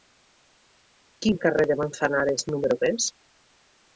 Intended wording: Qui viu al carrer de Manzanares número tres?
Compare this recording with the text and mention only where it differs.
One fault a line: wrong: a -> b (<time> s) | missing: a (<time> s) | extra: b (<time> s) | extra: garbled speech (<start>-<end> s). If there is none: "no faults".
missing: viu (1.3 s)